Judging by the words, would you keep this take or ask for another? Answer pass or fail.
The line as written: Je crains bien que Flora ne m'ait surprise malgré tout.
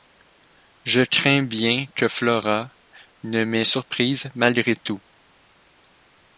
pass